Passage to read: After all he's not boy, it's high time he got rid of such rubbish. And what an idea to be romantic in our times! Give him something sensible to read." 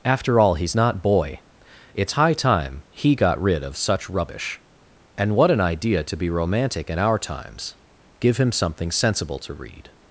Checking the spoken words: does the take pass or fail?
pass